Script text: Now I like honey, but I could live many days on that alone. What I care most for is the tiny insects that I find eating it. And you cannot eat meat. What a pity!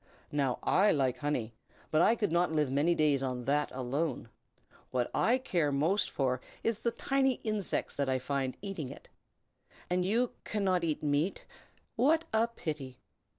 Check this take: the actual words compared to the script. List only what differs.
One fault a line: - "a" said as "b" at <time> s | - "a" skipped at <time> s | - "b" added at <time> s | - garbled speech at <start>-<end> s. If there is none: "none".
- "not" added at 2.3 s